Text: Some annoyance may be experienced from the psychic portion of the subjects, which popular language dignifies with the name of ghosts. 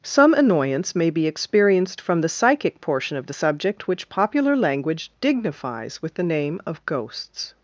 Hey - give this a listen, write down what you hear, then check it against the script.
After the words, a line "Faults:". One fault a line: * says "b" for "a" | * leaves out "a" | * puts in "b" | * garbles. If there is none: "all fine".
Some annoyance may be experienced from the psychic portion of the subject, which popular language dignifies with the name of ghosts.
Faults:
* says "subject" for "subjects"